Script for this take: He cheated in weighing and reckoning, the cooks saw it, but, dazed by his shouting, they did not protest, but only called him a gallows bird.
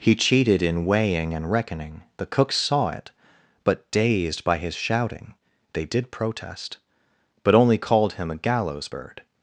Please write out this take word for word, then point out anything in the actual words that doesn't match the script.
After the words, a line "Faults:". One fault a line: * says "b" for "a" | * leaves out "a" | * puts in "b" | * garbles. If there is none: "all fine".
He cheated in weighing and reckoning, the cooks saw it, but, dazed by his shouting, they did protest, but only called him a gallows bird.
Faults:
* leaves out "not"